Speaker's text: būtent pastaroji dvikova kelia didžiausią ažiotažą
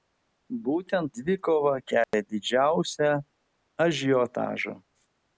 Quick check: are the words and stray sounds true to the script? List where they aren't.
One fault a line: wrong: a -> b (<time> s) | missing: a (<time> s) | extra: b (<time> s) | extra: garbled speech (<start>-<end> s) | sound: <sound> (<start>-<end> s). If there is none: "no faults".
missing: pastaroji (1.1 s)
sound: dropout (2.0-2.1 s)